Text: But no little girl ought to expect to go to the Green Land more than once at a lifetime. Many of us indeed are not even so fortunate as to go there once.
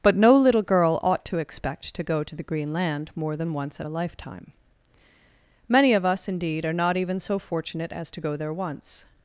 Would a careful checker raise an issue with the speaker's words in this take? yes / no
no